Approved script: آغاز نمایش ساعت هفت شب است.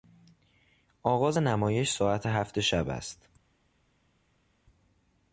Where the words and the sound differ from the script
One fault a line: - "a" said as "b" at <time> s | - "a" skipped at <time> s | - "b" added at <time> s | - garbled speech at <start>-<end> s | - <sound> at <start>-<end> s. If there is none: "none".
none